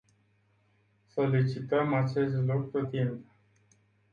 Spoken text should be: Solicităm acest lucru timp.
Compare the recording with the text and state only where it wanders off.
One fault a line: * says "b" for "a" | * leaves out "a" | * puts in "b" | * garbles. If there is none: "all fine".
all fine